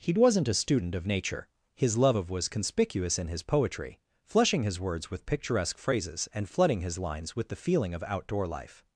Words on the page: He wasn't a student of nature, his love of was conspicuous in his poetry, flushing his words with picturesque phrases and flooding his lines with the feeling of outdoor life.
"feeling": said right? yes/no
yes